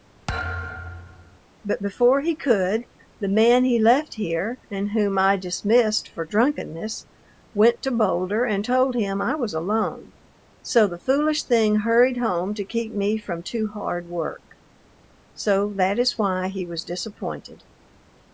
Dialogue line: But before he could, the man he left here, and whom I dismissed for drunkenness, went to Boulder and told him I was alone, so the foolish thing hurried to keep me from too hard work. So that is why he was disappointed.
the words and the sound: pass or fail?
fail